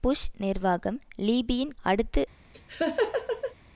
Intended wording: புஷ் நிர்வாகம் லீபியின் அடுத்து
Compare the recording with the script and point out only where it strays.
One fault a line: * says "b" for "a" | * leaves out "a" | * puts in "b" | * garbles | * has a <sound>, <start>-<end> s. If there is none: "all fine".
* has a laugh, 2.5-3.5 s